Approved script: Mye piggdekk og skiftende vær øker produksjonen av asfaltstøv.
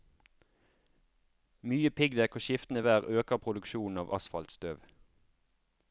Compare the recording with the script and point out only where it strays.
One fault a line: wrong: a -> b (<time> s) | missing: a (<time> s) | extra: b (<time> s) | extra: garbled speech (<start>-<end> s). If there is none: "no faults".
no faults